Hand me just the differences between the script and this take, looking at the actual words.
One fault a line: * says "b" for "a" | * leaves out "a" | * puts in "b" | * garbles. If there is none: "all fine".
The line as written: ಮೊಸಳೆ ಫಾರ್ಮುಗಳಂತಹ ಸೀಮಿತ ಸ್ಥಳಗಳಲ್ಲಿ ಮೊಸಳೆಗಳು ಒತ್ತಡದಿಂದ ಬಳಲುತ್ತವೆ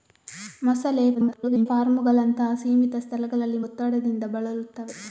* garbles
* leaves out "ಮೊಸಳೆಗಳು"